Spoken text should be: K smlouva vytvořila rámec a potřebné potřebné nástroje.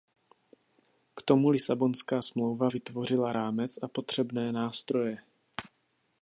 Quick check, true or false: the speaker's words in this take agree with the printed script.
false